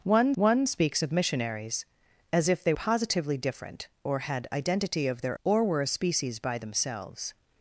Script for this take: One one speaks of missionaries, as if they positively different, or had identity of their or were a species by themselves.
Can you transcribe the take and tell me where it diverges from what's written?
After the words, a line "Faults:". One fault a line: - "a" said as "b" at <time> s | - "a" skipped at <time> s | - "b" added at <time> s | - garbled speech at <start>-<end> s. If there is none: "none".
One one speaks of missionaries, as if they positively different, or had identity of their or were a species by themselves.
Faults:
none